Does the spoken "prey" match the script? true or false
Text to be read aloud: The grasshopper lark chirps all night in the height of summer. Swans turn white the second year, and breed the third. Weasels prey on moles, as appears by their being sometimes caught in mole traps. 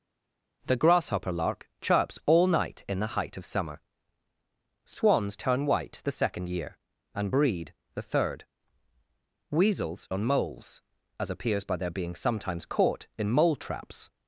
false